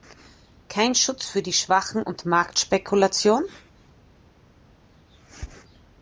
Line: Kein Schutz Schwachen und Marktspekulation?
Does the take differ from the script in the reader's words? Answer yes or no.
yes